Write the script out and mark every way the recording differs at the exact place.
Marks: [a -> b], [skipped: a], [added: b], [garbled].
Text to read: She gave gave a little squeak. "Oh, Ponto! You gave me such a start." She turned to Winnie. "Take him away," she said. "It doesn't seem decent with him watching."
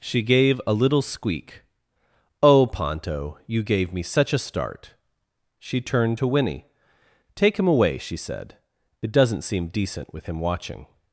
She gave [skipped: gave] a little squeak. "Oh, Ponto! You gave me such a start." She turned to Winnie. "Take him away," she said. "It doesn't seem decent with him watching."